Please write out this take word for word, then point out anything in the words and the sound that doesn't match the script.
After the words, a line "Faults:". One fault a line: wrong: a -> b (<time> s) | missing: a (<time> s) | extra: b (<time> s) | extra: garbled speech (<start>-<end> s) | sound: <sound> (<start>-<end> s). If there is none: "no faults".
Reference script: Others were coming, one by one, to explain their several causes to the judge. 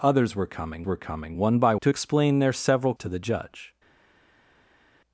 Others were coming were coming, one by to explain their several to the judge.
Faults:
extra: were coming (0.8 s)
missing: one (1.8 s)
missing: causes (2.9 s)